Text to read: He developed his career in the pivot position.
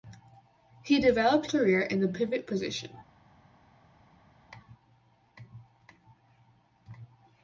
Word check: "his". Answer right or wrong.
wrong